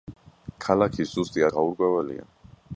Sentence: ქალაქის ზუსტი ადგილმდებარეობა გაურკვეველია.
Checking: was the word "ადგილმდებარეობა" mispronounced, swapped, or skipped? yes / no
yes